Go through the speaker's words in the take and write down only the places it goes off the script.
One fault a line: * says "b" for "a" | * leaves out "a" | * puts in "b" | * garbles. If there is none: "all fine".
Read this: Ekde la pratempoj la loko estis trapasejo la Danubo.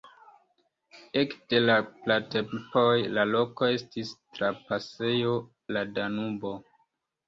all fine